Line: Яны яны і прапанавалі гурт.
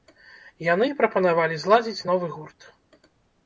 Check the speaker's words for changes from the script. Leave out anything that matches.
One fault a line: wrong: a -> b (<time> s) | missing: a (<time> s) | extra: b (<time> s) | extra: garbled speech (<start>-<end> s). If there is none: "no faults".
missing: яны (0.9 s)
extra: зладзіць новы (1.6 s)